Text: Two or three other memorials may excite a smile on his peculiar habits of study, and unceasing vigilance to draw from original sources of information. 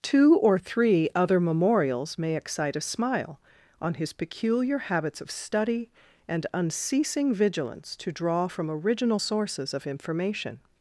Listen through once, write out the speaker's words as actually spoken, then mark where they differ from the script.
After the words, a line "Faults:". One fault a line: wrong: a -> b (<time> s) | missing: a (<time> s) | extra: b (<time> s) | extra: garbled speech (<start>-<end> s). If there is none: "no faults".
Two or three other memorials may excite a smile on his peculiar habits of study, and unceasing vigilance to draw from original sources of information.
Faults:
no faults